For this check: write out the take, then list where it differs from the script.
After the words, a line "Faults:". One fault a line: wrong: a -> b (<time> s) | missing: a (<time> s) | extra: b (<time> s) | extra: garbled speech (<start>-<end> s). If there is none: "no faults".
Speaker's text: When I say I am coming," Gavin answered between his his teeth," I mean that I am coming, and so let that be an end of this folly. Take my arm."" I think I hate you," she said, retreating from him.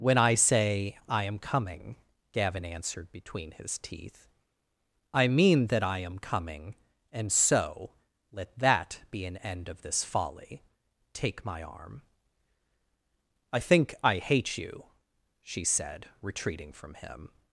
When I say I am coming," Gavin answered between his teeth," I mean that I am coming, and so let that be an end of this folly. Take my arm."" I think I hate you," she said, retreating from him.
Faults:
missing: his (3.8 s)